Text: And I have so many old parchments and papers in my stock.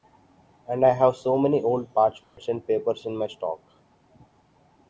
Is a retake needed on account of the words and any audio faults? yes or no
yes